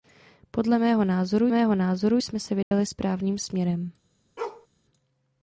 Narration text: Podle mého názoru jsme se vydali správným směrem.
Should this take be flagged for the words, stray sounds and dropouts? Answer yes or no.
yes